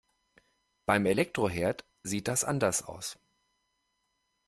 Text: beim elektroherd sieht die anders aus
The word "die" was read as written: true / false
false